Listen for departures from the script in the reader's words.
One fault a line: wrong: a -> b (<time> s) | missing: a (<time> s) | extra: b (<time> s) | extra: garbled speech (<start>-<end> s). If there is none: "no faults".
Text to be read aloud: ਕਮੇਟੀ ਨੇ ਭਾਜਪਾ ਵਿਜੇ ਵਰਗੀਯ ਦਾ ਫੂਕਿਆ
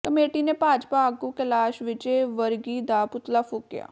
extra: ਆਗੂ ਕੈਲਾਸ਼ (1.1 s)
extra: ਪੁਤਲਾ (3.0 s)